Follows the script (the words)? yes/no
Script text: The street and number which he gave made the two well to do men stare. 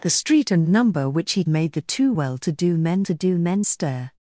no